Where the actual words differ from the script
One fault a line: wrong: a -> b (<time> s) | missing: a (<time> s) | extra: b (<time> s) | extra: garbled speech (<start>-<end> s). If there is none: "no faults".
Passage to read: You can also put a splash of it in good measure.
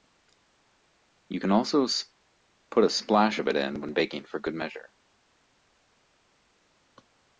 extra: when baking for (3.8 s)